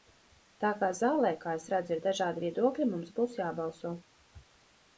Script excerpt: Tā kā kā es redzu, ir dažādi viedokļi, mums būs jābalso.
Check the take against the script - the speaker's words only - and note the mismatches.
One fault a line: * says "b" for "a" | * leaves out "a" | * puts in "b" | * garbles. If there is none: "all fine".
* puts in "zālē"